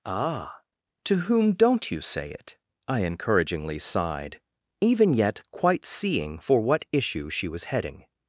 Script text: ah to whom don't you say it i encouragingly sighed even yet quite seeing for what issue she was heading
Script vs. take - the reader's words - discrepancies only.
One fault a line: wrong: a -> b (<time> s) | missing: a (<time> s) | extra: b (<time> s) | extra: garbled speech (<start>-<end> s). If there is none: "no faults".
no faults